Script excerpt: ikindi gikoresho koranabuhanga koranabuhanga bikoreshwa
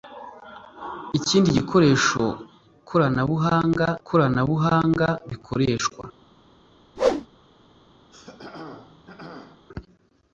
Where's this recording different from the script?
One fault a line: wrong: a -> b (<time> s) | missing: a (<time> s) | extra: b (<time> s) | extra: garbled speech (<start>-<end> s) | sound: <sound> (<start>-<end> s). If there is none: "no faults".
sound: whoosh (7.0-7.3 s)
sound: throat clearing (8.1-9.7 s)